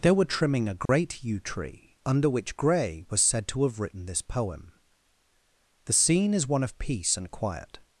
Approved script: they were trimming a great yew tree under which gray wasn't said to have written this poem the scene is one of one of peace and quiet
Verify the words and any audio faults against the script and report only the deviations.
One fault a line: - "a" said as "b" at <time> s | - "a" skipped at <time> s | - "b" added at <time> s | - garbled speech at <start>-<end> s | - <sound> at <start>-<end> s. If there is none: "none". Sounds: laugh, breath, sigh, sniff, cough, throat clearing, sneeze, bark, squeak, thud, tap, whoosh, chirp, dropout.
- dropout at 0.9-0.9 s
- "wasn't" said as "was" at 3.1 s
- "one of" skipped at 6.8 s